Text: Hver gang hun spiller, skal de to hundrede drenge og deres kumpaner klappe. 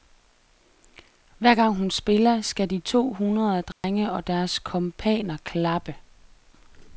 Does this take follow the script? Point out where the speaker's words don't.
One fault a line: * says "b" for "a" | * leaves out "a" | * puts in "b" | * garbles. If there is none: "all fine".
all fine